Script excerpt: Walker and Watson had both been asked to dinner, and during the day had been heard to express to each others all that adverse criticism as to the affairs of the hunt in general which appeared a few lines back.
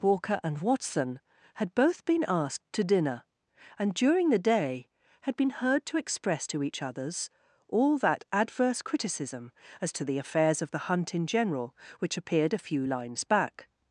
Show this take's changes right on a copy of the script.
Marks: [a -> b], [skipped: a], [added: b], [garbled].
Walker and Watson had both been asked to dinner, and during the day had been heard to express to each others all that adverse criticism as to the affairs of the hunt in general which appeared a few lines back.